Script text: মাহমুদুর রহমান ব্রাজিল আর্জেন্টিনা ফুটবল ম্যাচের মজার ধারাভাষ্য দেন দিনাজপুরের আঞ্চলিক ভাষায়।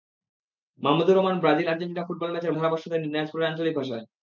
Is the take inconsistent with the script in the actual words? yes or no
yes